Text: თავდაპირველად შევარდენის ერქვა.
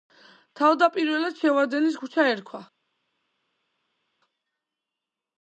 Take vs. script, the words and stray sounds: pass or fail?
fail